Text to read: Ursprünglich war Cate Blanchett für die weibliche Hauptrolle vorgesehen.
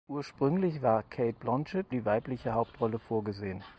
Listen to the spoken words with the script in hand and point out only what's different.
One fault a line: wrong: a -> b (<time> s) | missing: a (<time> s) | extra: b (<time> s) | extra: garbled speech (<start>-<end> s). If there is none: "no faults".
missing: für (1.9 s)